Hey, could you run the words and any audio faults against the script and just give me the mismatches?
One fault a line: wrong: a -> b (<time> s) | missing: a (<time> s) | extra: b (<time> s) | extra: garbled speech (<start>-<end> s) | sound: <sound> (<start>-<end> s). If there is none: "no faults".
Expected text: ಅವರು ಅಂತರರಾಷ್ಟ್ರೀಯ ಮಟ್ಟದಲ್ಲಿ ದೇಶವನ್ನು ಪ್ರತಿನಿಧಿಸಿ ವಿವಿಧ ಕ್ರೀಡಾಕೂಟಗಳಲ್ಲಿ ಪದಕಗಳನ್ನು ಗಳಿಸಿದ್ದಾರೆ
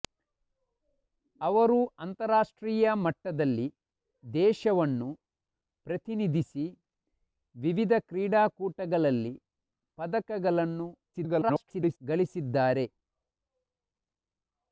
extra: garbled speech (11.1-12.0 s)